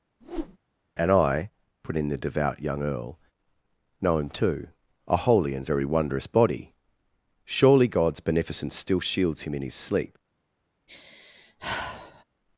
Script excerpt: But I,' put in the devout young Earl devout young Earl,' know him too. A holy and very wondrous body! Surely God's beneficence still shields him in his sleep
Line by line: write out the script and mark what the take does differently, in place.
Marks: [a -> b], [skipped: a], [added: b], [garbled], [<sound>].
[whoosh] [But -> And] I,' put in the devout young Earl [skipped: devout young Earl,'] know him too. A holy and very wondrous body! Surely God's beneficence still shields him in his sleep [sigh]